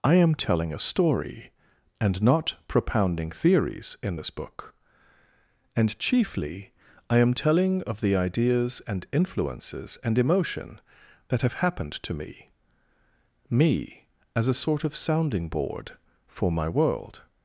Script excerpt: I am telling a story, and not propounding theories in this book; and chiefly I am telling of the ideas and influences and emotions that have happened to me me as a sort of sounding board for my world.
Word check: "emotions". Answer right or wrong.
wrong